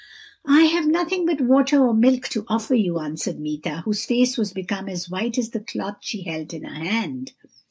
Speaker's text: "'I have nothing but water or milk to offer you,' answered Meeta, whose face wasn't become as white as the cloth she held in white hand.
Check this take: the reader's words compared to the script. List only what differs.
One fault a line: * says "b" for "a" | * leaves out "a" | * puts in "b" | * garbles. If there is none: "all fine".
* says "was" for "wasn't"
* says "her" for "white"